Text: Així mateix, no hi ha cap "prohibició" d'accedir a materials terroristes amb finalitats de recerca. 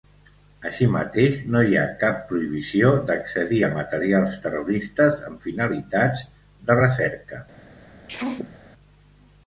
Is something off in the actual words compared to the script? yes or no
no